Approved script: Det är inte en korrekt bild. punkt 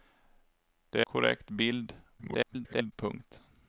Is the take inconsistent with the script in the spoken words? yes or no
yes